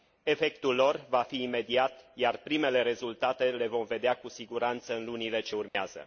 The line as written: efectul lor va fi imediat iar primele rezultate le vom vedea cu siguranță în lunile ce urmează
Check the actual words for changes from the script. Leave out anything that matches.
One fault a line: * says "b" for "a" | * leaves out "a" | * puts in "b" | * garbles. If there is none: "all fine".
all fine